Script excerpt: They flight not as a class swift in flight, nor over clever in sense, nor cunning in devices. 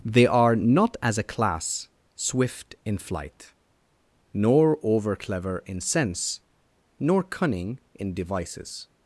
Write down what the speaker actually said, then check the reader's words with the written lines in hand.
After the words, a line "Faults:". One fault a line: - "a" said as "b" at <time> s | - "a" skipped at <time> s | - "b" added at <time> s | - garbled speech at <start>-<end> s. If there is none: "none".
They are not as a class swift in flight, nor over clever in sense, nor cunning in devices.
Faults:
- "flight" said as "are" at 0.2 s